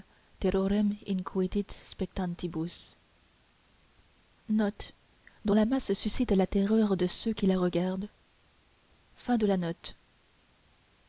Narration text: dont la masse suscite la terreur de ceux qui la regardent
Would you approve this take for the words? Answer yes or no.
yes